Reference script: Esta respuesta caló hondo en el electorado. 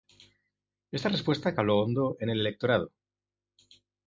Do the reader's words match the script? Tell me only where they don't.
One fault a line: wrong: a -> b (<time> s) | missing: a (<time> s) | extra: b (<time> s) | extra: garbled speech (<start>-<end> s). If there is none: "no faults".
no faults